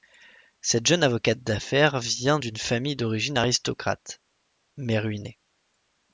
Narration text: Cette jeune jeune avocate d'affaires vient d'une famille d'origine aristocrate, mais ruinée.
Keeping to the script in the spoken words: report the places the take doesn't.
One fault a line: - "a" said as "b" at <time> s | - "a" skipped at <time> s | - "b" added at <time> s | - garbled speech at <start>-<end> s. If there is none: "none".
- "jeune" skipped at 1.0 s